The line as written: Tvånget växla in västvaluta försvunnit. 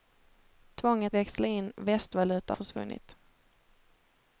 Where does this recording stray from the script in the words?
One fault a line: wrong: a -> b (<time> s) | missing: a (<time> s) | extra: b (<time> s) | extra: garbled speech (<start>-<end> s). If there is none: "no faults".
no faults